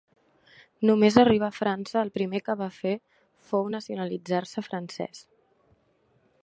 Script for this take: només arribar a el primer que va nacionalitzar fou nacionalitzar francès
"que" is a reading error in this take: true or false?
false